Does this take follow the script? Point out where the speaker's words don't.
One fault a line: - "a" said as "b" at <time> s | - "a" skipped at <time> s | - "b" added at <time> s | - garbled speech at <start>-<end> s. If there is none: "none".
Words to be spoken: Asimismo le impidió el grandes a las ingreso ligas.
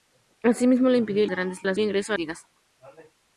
none